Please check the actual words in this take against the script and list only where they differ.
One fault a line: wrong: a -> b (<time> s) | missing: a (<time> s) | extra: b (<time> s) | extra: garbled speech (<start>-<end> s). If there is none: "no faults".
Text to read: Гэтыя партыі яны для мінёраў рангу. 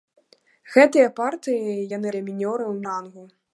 no faults